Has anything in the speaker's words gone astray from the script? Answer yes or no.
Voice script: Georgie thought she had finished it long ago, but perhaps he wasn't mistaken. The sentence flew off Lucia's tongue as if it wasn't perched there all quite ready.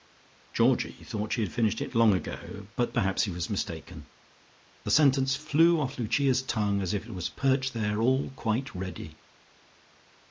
yes